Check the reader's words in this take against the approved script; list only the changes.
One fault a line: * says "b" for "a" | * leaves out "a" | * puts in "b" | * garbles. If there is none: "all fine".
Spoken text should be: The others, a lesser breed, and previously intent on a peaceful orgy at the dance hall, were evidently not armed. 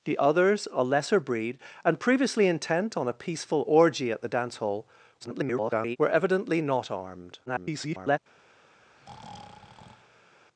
* garbles
* garbles